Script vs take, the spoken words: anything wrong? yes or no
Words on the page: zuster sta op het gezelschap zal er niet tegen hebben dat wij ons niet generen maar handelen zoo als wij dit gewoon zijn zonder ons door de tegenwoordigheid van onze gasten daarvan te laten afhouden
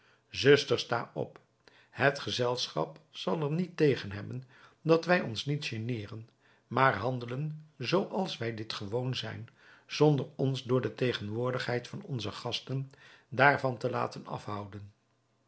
no